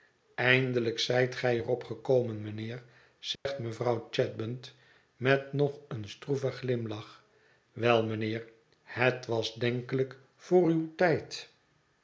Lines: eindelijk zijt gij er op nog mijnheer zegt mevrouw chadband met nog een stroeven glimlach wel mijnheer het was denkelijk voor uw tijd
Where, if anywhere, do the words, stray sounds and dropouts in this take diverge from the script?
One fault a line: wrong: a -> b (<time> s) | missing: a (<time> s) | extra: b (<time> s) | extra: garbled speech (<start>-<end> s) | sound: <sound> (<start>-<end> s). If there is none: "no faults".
wrong: nog -> gekomen (1.8 s)
sound: dropout (3.4-3.5 s)